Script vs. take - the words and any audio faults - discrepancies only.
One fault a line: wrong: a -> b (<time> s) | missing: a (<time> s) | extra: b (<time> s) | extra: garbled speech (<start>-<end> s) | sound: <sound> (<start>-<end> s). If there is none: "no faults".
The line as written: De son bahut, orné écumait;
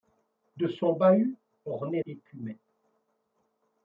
no faults